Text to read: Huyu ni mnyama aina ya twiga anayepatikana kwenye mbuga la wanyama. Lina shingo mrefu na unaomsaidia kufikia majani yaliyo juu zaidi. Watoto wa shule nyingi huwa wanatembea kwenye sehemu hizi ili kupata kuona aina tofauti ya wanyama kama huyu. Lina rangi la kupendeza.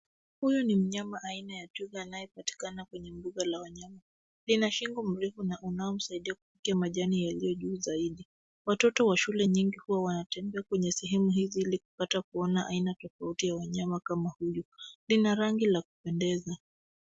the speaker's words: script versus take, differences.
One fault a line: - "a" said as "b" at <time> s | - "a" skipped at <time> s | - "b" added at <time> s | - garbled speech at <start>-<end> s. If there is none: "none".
none